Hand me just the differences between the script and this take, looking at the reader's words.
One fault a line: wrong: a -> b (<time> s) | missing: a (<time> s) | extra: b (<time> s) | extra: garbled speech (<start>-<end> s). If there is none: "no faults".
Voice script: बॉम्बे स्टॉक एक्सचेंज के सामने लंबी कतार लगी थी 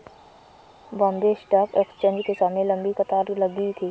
no faults